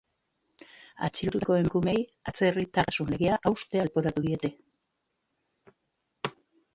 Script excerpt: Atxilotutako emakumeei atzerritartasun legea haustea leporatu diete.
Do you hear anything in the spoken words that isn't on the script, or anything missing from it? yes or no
no